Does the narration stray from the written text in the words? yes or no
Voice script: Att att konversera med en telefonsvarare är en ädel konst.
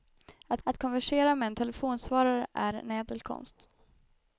no